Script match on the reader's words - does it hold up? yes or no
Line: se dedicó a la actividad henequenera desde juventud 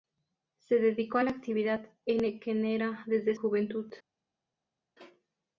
yes